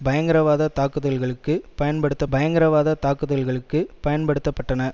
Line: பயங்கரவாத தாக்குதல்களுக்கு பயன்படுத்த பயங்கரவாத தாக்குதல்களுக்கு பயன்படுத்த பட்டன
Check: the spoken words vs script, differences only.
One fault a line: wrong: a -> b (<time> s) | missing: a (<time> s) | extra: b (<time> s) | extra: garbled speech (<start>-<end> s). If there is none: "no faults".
no faults